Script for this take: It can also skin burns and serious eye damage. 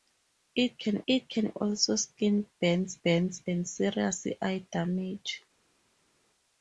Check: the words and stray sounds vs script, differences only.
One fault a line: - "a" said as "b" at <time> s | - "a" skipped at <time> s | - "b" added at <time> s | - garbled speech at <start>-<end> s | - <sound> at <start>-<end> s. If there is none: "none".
- "it can" added at 1.1 s
- "burns" added at 3.0 s